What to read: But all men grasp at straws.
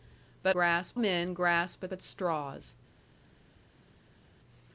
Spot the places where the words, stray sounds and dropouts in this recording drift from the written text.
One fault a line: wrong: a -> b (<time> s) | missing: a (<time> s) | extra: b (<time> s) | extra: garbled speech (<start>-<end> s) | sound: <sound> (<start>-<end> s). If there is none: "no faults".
wrong: all -> grasp (0.5 s)
extra: at (1.9 s)